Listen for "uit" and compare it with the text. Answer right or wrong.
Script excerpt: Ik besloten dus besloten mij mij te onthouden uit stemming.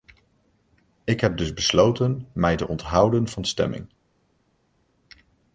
wrong